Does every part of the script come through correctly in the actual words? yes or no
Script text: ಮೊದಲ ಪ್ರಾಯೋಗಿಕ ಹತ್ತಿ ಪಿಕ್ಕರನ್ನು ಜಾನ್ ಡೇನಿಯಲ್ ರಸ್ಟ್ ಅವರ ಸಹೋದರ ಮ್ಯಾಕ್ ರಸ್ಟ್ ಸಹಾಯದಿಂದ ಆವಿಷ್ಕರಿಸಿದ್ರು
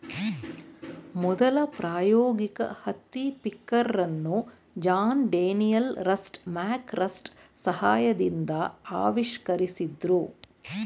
no